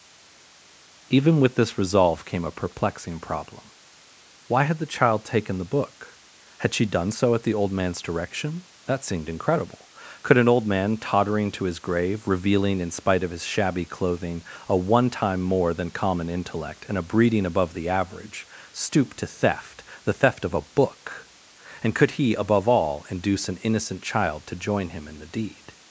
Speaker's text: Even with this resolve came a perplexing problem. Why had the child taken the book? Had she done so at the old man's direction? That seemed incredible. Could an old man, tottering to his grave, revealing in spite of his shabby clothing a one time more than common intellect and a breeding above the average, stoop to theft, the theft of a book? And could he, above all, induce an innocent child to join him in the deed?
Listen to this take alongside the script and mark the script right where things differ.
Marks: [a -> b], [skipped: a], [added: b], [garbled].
Even with this resolve came a perplexing problem. Why had the child taken the book? Had she done so at the old man's direction? That seemed incredible. Could an old man, tottering to his grave, revealing in spite of his shabby clothing a one time more than common intellect and a breeding above the average, stoop to theft, the theft of a book? And could he, above all, induce an innocent child to join him in the deed?